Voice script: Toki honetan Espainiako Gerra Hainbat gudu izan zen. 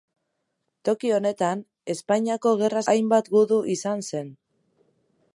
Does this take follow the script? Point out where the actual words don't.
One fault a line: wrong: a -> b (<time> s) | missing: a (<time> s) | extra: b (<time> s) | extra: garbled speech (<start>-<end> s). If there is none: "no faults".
no faults